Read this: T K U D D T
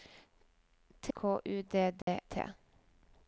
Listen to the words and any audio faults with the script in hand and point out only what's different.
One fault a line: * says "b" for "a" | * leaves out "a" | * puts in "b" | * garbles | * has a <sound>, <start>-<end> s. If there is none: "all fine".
* has a dropout, 2.0-2.1 s